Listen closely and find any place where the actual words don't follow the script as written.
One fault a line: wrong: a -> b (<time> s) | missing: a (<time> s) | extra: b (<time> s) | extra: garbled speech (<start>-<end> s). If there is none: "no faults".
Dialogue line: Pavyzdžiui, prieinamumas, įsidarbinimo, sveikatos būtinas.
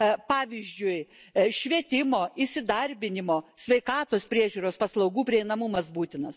wrong: prieinamumas -> švietimo (1.5 s)
extra: priežiūros paslaugų prieinamumas (4.3 s)